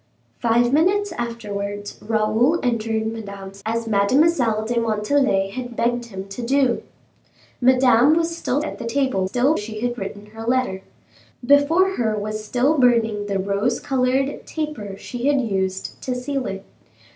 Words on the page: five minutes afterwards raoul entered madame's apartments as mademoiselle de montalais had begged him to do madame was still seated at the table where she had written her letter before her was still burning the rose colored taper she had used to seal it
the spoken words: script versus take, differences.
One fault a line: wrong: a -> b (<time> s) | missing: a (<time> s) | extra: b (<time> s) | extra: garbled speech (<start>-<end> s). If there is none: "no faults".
missing: apartments (3.6 s)
missing: seated (8.6 s)
wrong: where -> still (9.2 s)